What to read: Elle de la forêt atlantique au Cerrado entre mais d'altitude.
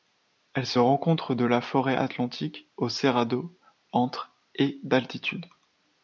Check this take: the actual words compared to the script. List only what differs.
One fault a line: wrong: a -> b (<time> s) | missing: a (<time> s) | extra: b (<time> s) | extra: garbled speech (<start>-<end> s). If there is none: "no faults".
extra: se rencontre (0.7 s)
wrong: mais -> et (4.5 s)